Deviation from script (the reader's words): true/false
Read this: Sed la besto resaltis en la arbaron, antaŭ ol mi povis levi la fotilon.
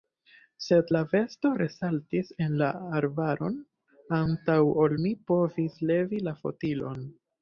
false